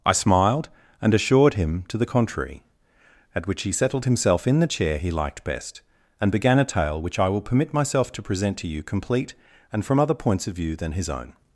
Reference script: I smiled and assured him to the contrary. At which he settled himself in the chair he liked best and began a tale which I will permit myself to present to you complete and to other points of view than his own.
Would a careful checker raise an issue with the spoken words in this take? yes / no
yes